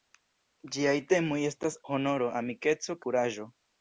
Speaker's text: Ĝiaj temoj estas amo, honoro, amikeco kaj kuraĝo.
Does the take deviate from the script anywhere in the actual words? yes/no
yes